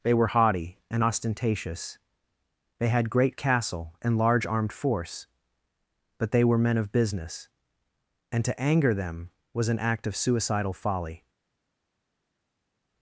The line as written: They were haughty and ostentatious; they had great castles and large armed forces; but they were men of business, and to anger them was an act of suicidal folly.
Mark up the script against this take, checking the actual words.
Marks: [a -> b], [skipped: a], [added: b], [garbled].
They were haughty and ostentatious; they had great [castles -> castle] and large armed [forces; -> force] but they were men of business, and to anger them was an act of suicidal folly.